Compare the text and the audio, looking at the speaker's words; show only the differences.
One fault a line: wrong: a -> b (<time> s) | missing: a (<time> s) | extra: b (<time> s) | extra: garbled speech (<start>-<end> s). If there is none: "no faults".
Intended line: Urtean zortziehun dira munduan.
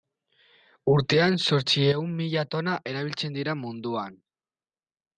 extra: mila tona erabiltzen (2.2 s)